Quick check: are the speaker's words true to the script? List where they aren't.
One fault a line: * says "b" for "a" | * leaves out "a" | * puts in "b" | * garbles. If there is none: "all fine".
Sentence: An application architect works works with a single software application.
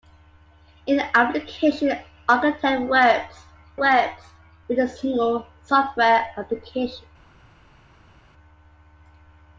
all fine